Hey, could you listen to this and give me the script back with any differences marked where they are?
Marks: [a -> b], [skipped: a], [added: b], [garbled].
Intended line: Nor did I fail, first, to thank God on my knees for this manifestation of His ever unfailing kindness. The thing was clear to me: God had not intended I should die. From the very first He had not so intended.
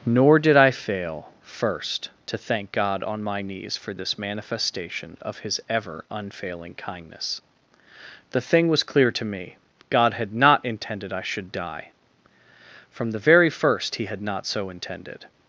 Nor did I fail, first, to thank God on my knees for this manifestation of His ever unfailing kindness. The thing was clear to me: God had not intended I should die. From the very first He had not so intended.